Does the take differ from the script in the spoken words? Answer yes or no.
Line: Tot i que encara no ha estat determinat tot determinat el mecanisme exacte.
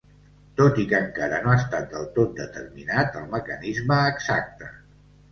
yes